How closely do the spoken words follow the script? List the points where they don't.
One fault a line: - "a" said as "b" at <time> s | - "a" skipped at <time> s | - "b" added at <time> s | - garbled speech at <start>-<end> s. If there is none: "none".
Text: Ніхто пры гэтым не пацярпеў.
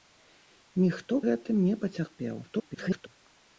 - "пры" skipped at 1.2 s
- garbled speech at 2.4-3.1 s